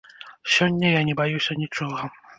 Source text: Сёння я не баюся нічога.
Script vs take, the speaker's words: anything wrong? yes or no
no